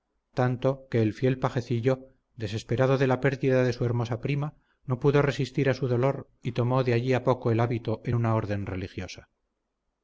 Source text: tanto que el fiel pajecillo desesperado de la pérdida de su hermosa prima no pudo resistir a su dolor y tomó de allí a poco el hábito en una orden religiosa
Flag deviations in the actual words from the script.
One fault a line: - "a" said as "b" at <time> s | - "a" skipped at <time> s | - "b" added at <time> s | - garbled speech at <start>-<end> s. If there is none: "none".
none